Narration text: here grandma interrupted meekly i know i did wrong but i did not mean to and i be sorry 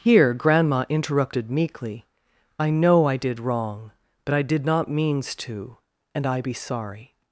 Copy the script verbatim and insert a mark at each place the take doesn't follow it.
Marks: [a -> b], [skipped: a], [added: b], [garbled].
here grandma interrupted meekly i know i did wrong but i did not [mean -> means] to and i be sorry